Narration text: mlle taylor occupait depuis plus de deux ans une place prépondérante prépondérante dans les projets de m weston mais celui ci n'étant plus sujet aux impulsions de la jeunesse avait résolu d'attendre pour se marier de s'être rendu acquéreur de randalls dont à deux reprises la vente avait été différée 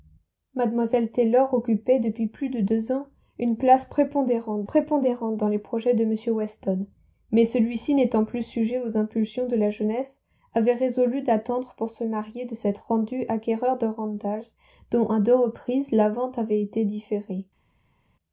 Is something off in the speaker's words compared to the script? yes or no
no